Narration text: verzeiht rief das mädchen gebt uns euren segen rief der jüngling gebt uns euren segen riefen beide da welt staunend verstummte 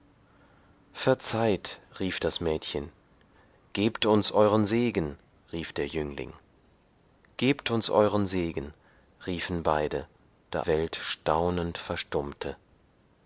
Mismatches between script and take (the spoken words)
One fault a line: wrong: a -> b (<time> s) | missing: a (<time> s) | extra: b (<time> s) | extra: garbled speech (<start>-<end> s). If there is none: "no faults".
no faults